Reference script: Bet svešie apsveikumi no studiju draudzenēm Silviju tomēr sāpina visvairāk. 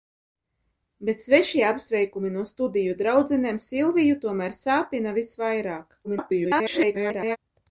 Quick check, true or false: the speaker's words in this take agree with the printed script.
false